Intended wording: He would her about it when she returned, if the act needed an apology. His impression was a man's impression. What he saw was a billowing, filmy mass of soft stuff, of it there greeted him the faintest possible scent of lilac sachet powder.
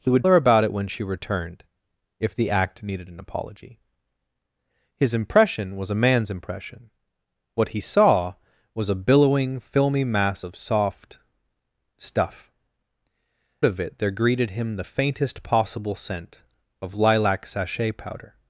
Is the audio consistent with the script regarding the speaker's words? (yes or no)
yes